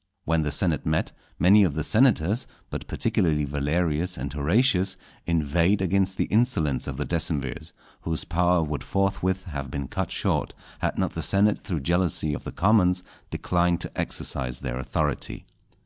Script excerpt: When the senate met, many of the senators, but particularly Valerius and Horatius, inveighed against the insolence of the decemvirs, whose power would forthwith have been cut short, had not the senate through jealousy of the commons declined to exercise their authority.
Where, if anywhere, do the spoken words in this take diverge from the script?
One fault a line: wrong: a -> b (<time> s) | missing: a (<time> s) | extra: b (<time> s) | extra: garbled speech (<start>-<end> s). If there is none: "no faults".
no faults